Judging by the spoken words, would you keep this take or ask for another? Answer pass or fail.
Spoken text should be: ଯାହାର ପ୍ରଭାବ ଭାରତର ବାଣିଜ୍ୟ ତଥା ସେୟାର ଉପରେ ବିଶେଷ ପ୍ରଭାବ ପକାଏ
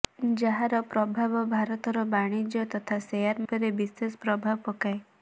pass